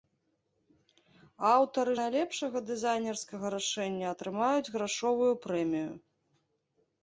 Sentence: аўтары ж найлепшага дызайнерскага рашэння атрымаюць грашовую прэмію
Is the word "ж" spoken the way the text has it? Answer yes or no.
no